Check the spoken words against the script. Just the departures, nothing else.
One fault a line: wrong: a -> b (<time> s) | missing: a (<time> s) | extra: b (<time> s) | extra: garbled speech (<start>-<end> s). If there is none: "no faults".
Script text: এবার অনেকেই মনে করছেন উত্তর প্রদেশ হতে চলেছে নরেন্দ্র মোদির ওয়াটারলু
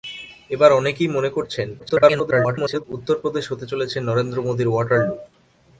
extra: garbled speech (1.8-2.8 s)